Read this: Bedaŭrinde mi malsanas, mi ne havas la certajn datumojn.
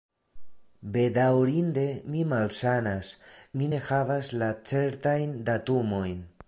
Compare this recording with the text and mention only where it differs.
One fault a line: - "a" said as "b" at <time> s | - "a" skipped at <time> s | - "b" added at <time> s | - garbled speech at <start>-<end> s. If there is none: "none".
none